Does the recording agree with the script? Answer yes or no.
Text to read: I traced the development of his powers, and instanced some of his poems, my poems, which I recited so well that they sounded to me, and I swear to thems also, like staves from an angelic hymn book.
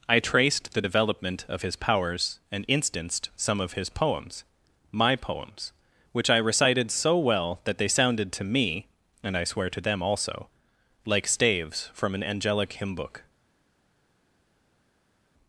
no